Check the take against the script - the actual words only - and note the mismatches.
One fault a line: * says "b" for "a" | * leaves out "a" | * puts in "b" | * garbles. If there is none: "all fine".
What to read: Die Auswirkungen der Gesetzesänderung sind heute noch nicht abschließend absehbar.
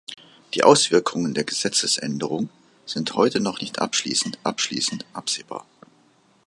* puts in "abschließend"